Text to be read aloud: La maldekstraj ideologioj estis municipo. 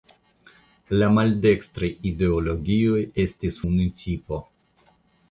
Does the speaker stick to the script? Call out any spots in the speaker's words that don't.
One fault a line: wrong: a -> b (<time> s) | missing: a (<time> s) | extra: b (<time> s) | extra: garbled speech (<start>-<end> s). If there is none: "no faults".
no faults